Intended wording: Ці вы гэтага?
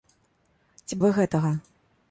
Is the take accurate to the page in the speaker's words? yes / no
yes